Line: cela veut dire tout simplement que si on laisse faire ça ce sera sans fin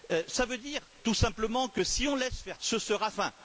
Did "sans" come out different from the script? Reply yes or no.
yes